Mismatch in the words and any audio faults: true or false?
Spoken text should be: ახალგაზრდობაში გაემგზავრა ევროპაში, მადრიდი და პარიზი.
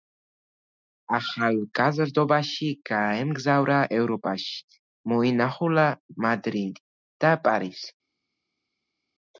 true